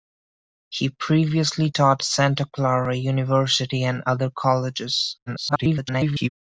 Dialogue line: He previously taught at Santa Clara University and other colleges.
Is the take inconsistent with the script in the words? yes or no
yes